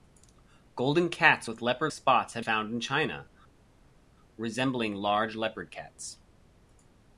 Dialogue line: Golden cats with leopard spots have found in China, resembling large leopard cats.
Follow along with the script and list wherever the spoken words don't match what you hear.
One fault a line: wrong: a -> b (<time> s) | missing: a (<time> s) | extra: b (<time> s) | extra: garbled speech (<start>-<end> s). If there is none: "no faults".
no faults